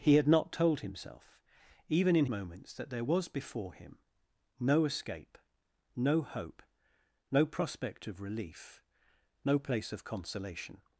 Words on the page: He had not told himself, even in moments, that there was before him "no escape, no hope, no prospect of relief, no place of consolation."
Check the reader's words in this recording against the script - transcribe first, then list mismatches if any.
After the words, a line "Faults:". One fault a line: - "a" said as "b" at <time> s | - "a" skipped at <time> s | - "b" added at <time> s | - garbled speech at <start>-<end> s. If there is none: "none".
He had not told himself, even in moments, that there was before him "no escape, no hope, no prospect of relief, no place of consolation."
Faults:
none